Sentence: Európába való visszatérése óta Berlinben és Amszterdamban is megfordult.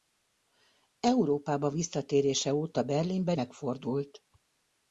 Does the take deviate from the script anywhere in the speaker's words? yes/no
yes